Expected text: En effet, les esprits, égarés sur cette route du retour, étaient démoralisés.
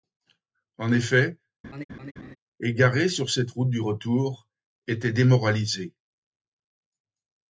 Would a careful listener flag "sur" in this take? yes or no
no